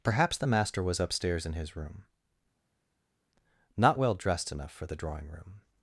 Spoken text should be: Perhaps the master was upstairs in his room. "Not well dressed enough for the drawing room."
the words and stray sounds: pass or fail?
pass